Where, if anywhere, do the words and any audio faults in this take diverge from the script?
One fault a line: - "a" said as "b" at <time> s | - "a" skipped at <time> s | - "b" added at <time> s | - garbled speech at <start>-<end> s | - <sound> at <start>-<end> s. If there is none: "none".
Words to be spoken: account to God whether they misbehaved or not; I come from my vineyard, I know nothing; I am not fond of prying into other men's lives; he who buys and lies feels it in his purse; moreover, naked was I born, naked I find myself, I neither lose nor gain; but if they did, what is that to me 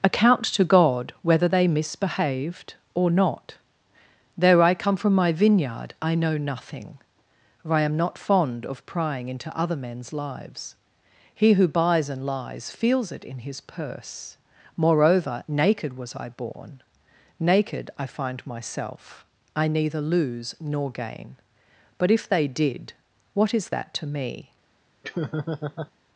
- "though" added at 4.4 s
- "for" added at 7.6 s
- laugh at 25.0-25.9 s